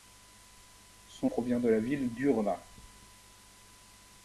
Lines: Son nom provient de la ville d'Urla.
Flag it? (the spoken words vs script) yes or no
yes